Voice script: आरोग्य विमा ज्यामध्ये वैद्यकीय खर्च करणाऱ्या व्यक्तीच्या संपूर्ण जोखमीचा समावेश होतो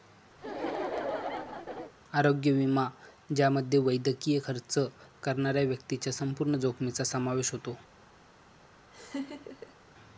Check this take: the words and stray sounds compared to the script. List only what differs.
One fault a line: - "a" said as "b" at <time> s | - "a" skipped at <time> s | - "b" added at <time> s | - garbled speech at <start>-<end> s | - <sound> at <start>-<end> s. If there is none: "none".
- laugh at 0.4-1.9 s
- laugh at 8.9-9.8 s